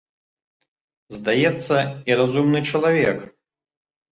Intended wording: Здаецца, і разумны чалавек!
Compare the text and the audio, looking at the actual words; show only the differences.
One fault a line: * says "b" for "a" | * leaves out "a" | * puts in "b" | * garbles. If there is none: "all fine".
all fine